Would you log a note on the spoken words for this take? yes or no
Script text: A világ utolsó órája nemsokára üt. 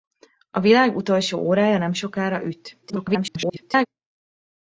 yes